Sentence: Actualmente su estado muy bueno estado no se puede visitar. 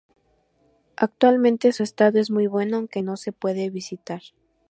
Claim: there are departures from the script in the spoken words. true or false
true